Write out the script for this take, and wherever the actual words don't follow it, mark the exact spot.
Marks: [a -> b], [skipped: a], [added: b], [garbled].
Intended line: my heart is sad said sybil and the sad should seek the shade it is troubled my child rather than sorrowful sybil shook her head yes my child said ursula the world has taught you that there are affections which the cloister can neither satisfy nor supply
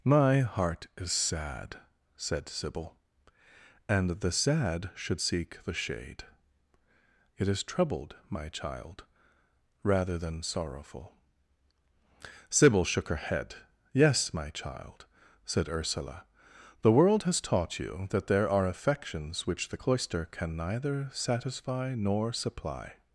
my heart is sad said sybil and the sad should seek the shade it is troubled my child rather than sorrowful sybil shook her head yes my child said ursula the world has taught you that there are affections which the cloister can neither satisfy nor supply